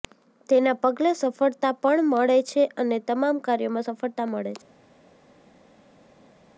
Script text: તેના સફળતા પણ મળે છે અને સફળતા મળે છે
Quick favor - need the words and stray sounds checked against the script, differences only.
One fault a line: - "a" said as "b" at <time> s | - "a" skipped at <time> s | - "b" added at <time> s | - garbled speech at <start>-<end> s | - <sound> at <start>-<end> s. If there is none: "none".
- "પગલે" added at 0.8 s
- "તમામ કાર્યોમાં" added at 3.1 s